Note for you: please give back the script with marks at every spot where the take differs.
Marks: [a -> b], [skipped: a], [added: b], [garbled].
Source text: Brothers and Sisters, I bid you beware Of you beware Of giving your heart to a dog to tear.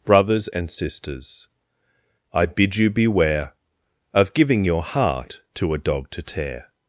Brothers and Sisters, I bid you beware Of [skipped: you beware Of] giving your heart to a dog to tear.